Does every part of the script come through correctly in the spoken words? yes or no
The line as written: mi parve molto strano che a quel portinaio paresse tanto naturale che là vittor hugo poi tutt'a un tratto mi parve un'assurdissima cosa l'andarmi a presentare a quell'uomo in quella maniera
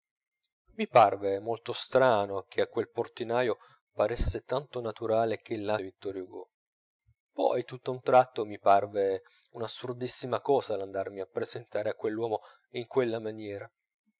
yes